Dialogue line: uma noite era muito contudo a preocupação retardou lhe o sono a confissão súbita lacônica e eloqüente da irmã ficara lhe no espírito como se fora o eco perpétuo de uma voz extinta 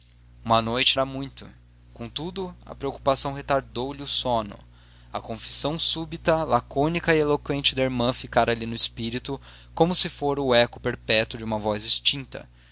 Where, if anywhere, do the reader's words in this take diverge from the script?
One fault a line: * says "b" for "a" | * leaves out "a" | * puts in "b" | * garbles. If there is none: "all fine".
all fine